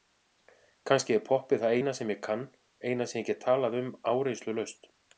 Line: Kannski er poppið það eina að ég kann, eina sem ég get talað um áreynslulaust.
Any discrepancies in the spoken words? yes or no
yes